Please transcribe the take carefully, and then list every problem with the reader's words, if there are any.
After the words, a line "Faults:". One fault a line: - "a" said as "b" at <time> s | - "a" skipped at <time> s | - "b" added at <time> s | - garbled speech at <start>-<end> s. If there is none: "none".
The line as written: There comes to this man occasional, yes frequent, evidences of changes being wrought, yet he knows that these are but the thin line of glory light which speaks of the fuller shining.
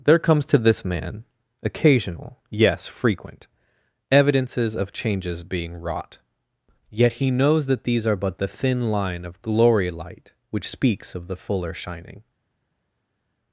There comes to this man occasional, yes frequent, evidences of changes being wrought, yet he knows that these are but the thin line of glory light which speaks of the fuller shining.
Faults:
none